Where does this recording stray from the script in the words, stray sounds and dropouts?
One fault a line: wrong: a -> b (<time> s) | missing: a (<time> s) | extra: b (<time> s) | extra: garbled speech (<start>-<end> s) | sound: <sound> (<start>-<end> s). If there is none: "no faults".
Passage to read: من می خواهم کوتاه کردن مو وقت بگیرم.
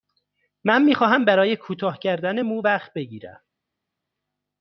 extra: برای (1.2 s)